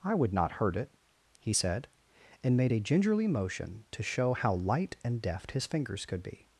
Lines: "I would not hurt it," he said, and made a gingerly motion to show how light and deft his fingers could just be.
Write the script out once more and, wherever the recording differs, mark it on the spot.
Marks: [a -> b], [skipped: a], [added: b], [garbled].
"I would not hurt it," he said, and made a gingerly motion to show how light and deft his fingers could [skipped: just] be.